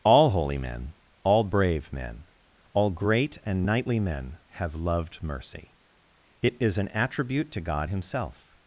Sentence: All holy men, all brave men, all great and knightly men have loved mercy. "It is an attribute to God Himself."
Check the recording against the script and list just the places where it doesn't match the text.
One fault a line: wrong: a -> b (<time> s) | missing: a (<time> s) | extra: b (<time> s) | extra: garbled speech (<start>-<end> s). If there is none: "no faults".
no faults